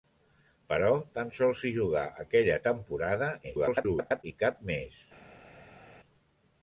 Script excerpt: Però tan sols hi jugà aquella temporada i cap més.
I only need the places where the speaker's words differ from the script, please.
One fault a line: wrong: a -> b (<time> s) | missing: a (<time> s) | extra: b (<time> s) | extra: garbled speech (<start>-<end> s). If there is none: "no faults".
extra: garbled speech (3.4-4.2 s)